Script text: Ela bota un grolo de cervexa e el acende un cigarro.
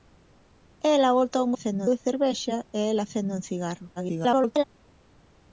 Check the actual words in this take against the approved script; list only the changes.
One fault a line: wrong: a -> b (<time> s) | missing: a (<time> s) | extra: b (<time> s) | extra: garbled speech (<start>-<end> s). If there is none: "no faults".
wrong: grolo -> acende (1.5 s)
extra: garbled speech (4.0-4.6 s)